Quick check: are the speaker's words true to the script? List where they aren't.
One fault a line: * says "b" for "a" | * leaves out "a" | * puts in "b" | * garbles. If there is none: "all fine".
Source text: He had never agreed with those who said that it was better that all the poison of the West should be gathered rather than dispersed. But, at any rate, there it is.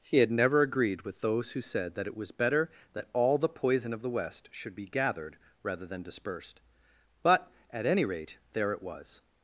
* says "was" for "is"